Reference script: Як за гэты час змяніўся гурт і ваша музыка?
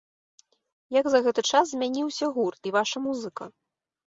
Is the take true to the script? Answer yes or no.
yes